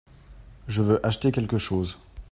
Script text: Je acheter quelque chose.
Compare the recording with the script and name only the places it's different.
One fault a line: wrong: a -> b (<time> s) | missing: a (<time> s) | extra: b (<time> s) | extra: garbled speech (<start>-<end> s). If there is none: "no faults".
extra: veux (0.8 s)